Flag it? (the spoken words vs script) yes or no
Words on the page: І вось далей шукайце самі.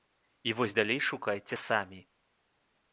no